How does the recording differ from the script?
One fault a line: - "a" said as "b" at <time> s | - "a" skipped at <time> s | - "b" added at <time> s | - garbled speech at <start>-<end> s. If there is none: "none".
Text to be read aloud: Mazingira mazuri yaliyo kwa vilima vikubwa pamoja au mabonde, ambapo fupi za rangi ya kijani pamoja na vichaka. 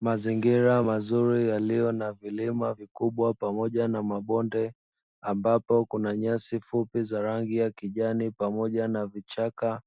- "kwa" said as "na" at 1.9 s
- "au" said as "na" at 3.9 s
- "kuna nyasi" added at 5.9 s